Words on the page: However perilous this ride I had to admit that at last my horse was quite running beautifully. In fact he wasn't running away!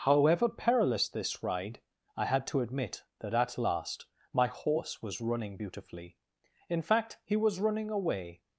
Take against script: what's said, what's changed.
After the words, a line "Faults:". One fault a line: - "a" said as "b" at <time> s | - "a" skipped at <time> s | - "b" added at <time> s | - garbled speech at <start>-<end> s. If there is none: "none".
However perilous this ride I had to admit that at last my horse was running beautifully. In fact he was running away!
Faults:
- "quite" skipped at 5.2 s
- "wasn't" said as "was" at 7.4 s